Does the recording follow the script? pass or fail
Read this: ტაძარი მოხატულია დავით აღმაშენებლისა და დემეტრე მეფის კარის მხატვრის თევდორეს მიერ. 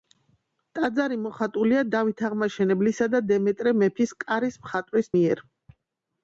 fail